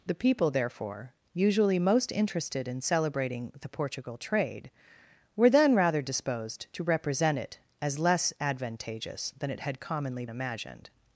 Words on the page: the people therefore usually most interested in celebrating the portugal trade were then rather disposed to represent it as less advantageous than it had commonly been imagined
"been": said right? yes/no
no